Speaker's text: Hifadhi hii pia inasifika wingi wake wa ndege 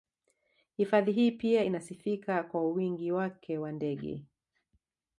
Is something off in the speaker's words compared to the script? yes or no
yes